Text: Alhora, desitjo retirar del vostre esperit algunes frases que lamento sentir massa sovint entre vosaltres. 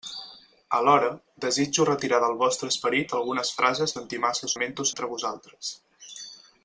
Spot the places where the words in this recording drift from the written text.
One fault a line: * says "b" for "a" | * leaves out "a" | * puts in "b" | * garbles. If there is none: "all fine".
* leaves out "que lamento"
* says "lamento" for "sovint"